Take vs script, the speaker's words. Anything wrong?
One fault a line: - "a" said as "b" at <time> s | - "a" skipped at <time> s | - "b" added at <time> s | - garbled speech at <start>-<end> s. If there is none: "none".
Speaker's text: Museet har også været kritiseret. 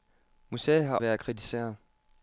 - "også" skipped at 1.0 s